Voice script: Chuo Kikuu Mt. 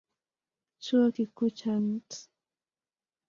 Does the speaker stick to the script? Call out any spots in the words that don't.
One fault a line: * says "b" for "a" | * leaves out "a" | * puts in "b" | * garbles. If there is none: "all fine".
* puts in "cha"